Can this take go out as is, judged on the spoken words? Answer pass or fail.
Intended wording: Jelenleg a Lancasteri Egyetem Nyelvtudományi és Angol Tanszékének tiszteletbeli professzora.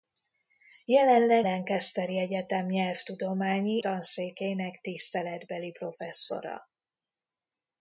fail